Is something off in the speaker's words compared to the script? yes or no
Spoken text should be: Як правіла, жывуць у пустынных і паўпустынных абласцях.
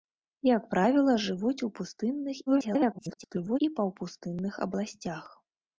yes